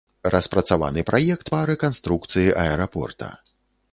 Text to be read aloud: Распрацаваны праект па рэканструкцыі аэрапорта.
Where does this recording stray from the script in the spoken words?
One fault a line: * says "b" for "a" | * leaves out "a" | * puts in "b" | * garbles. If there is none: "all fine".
all fine